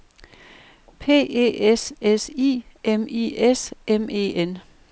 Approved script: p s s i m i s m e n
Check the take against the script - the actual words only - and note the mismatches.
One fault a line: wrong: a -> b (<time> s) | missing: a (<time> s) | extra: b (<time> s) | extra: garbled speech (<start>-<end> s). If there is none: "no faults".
extra: e (1.3 s)